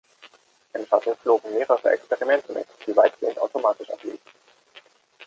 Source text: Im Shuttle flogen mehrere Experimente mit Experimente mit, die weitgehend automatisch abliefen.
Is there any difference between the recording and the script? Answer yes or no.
yes